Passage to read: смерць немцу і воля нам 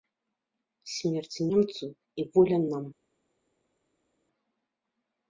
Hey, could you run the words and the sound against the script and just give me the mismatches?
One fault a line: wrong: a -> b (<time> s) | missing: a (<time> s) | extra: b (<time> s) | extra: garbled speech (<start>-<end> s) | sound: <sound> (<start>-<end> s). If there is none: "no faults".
no faults